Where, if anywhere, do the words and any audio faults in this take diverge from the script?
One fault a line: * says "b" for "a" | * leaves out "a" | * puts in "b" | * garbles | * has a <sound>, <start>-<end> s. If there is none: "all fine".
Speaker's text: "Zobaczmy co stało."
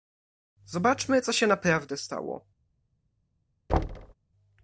* puts in "się naprawdę"
* has a thud, 3.7-4.1 s